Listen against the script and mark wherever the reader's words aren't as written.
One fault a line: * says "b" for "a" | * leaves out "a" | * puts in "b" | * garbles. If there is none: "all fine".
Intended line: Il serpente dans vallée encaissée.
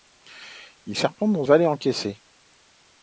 all fine